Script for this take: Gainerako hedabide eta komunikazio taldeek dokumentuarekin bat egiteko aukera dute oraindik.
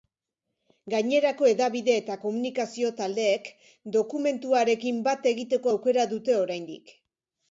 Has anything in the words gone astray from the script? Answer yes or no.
no